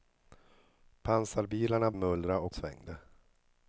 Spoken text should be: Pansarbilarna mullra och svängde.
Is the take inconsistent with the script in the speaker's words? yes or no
no